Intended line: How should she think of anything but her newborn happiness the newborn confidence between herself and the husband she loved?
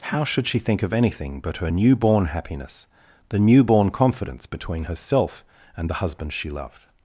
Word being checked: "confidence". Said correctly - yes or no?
yes